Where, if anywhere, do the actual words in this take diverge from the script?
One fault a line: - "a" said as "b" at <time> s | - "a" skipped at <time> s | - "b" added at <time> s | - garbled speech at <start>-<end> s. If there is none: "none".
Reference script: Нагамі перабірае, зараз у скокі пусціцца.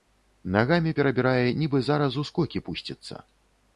- "нібы" added at 1.6 s